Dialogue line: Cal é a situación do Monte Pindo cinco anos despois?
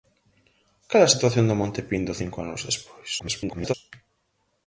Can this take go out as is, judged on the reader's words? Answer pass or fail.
fail